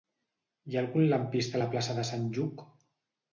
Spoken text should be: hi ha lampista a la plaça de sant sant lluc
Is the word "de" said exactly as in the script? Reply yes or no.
yes